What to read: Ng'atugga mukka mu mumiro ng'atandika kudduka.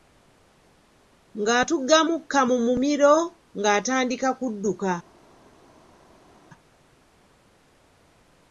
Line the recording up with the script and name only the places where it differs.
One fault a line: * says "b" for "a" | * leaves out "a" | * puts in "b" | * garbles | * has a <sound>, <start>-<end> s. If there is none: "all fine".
all fine